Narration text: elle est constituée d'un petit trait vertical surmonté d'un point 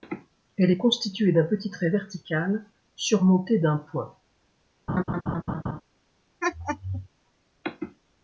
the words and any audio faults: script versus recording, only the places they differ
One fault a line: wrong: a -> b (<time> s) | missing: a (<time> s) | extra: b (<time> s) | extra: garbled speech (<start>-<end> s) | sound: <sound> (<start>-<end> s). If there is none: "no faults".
sound: laugh (4.9-5.8 s)
sound: laugh (6.4-7.1 s)